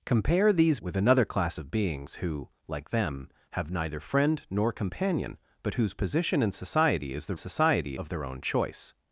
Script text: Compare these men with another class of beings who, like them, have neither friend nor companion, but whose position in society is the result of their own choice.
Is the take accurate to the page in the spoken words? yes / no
no